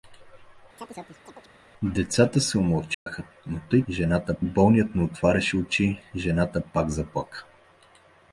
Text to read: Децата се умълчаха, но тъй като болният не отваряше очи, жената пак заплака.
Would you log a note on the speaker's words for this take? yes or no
yes